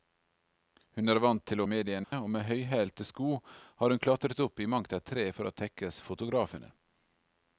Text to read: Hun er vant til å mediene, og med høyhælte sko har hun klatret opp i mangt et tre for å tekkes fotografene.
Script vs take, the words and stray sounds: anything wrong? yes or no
yes